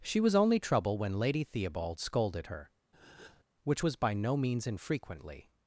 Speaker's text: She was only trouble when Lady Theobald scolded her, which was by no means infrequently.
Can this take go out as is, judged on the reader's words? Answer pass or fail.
pass